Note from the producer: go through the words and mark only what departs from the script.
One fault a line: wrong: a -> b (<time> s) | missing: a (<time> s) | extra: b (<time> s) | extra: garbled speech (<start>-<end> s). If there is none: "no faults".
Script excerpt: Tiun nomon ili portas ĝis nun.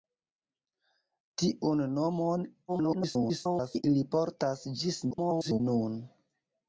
extra: garbled speech (2.7-3.8 s)
extra: garbled speech (5.1-5.6 s)